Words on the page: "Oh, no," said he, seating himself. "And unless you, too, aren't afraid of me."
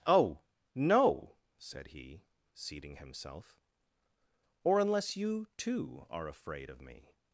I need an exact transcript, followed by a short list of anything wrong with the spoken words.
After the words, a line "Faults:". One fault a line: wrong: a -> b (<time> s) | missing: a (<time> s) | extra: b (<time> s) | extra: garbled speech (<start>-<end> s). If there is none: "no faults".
"Oh, no," said he, seating himself. "Or unless you, too, are afraid of me."
Faults:
wrong: And -> Or (4.6 s)
wrong: aren't -> are (6.1 s)